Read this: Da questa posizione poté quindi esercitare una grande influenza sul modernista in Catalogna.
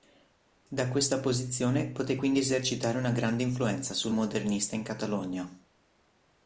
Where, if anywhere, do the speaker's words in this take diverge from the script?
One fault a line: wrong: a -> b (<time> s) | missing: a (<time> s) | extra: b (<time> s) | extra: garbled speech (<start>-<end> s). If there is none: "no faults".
no faults